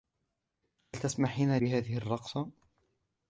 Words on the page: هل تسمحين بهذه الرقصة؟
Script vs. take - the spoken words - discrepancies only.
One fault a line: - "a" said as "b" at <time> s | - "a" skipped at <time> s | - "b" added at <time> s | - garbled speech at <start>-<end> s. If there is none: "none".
none